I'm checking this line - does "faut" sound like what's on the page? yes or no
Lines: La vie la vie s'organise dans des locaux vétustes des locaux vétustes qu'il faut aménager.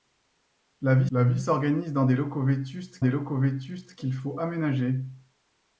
yes